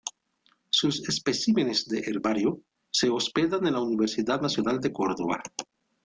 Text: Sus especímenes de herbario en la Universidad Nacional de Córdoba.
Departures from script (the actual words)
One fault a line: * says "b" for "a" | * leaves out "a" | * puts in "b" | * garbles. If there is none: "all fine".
* puts in "se hospedan"